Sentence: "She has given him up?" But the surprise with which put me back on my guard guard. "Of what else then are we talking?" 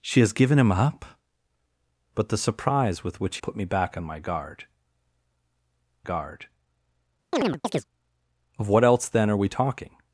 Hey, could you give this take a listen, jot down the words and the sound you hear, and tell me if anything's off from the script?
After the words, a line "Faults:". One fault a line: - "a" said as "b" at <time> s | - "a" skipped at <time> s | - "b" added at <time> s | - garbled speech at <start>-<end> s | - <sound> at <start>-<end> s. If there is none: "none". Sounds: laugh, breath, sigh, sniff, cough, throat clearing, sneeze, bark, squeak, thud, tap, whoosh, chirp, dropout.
"She has given him up?" But the surprise with which put me back on my guard guard. "Of what else then are we talking?"
Faults:
- chirp at 7.3-7.9 s